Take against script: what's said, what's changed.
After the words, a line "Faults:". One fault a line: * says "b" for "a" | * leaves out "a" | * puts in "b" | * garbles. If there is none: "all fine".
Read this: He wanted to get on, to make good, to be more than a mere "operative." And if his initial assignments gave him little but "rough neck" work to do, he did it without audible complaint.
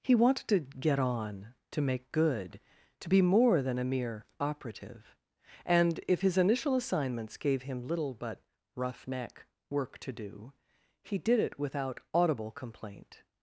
He wanted to get on, to make good, to be more than a mere "operative." And if his initial assignments gave him little but "rough neck" work to do, he did it without audible complaint.
Faults:
all fine